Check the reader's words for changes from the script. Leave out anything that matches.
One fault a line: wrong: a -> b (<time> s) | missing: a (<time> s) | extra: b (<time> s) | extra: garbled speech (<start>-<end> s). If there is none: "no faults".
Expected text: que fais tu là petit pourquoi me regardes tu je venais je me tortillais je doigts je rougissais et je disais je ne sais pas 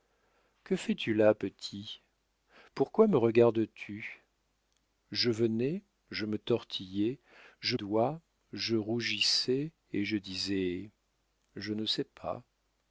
no faults